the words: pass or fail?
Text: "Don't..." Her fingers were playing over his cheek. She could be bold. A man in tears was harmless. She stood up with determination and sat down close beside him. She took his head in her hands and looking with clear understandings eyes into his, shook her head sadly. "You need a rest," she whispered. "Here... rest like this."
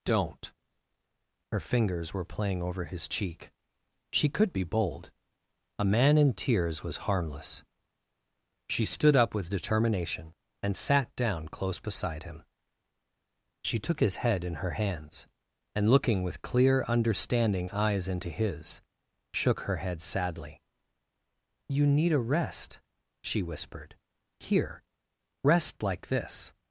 fail